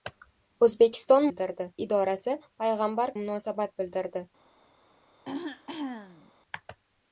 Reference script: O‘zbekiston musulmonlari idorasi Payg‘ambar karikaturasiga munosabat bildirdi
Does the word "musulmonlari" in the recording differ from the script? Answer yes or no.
yes